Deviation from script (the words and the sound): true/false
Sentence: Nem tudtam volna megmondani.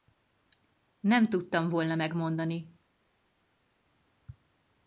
false